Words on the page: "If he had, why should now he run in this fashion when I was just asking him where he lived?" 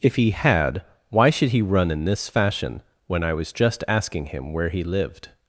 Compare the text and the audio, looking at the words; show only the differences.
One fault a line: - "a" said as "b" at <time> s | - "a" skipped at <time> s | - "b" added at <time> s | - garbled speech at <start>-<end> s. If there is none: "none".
- "now" skipped at 1.5 s